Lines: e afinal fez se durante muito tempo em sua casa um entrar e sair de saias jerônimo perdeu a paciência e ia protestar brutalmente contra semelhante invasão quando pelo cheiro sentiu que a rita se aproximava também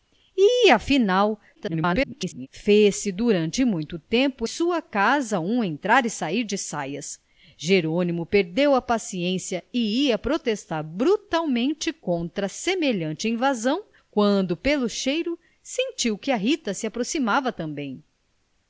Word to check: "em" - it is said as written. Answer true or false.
false